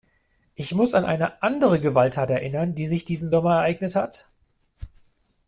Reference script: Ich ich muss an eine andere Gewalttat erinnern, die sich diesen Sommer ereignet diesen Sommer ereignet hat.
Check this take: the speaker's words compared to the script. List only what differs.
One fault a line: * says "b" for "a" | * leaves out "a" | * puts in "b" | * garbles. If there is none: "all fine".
* leaves out "ich"
* leaves out "diesen Sommer ereignet"